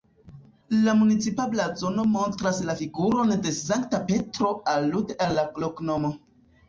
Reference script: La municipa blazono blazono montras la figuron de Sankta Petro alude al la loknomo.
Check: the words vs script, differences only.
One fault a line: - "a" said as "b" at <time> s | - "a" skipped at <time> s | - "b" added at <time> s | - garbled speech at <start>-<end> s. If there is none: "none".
- "blazono" skipped at 2.0 s